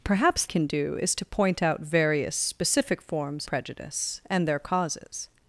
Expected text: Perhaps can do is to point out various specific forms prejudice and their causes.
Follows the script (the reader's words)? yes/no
yes